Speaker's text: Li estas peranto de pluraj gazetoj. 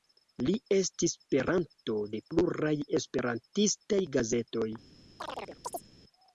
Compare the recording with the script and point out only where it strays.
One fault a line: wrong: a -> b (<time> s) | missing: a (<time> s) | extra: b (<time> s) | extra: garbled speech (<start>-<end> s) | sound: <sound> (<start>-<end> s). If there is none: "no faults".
wrong: estas -> estis (0.8 s)
extra: esperantistaj (3.0 s)
sound: chirp (5.2-5.9 s)